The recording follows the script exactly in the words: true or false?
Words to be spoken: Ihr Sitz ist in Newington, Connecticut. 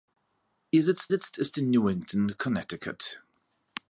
false